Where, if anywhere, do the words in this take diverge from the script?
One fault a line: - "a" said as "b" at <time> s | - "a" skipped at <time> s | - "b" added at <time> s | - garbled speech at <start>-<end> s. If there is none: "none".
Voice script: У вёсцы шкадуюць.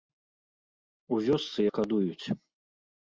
none